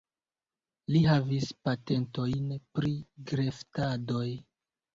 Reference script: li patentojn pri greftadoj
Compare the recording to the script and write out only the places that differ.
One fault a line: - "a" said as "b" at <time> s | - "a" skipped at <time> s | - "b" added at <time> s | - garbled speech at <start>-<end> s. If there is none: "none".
- "havis" added at 1.1 s